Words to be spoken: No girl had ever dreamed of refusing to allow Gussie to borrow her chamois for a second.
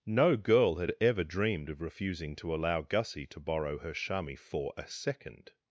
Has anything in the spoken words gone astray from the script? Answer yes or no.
no